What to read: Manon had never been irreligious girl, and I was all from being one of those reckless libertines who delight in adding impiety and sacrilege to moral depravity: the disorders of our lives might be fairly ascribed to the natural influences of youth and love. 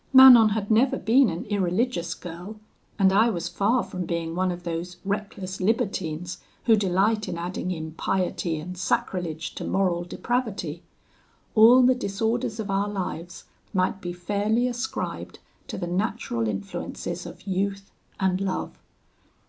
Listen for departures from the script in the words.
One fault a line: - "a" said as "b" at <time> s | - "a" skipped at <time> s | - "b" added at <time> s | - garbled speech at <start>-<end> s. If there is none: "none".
- "an" added at 1.3 s
- "all" said as "far" at 3.5 s
- "all" added at 11.5 s